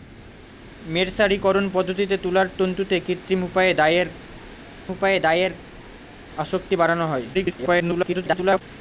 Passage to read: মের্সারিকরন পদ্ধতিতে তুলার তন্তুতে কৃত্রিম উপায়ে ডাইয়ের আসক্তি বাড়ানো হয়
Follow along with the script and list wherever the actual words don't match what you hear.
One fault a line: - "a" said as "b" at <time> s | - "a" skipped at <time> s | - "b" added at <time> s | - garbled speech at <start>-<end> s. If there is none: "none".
- "উপায়ে ডাইয়ের" added at 4.9 s
- garbled speech at 7.3-8.6 s